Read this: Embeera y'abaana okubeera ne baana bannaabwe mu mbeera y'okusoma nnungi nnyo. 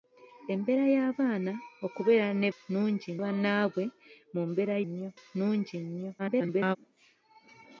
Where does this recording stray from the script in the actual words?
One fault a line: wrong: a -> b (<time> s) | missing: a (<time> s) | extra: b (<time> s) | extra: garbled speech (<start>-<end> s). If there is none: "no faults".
wrong: baana -> nnungi (2.5 s)
wrong: y'okusoma -> nnyo (4.8 s)
extra: garbled speech (6.2-6.8 s)